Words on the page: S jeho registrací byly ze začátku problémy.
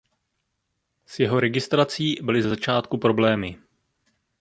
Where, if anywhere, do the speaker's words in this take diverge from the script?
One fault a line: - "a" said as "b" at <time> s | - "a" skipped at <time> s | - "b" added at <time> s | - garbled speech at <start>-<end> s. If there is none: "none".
none